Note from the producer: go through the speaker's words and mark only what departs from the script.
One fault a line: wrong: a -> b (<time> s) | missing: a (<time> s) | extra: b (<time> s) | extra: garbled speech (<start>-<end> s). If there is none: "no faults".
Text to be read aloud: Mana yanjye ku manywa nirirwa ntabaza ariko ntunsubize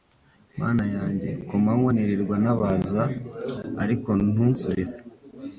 no faults